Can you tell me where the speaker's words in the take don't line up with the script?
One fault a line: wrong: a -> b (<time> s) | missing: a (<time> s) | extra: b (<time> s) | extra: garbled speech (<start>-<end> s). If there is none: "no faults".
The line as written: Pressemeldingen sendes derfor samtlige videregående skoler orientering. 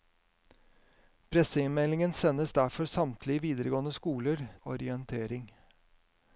no faults